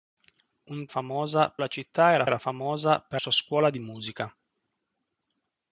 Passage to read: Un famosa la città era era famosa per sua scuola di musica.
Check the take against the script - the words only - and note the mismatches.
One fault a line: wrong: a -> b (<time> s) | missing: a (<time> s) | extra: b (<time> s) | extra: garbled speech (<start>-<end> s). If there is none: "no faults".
no faults